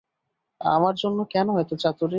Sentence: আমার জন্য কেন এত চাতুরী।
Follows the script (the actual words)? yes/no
yes